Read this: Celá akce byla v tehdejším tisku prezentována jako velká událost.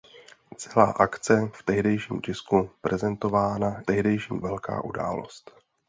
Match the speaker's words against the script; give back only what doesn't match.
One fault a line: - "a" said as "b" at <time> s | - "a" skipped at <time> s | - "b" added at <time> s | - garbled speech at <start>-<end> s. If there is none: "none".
- "byla" skipped at 1.5 s
- "jako" said as "tehdejším" at 3.8 s